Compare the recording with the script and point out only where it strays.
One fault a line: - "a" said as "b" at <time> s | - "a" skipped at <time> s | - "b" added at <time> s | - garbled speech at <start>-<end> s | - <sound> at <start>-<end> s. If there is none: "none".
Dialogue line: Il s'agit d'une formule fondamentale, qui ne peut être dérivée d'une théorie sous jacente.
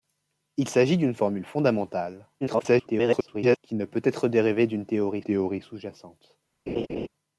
- garbled speech at 2.4-3.6 s
- "théorie" added at 5.2 s
- laugh at 6.7-7.1 s